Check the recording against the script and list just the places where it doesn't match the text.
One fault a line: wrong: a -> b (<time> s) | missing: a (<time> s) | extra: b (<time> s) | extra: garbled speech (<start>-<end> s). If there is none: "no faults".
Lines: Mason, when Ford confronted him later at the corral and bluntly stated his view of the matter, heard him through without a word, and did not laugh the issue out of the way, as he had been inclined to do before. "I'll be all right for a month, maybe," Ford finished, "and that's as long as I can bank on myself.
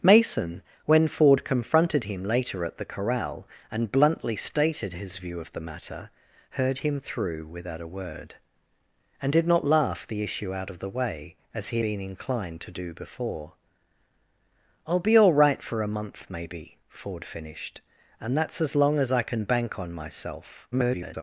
missing: had (11.8 s)
extra: garbled speech (20.7-21.2 s)